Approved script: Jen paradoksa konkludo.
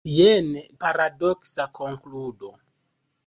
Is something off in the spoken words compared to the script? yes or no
no